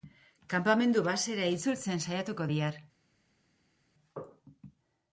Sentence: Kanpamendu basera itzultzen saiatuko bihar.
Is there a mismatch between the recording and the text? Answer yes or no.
no